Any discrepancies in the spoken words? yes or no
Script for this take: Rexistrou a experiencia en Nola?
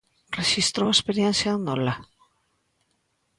no